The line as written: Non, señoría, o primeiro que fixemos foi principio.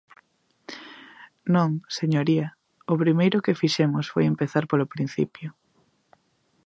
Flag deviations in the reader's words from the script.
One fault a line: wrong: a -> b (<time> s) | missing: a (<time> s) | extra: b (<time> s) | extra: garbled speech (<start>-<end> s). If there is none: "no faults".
extra: empezar polo (4.3 s)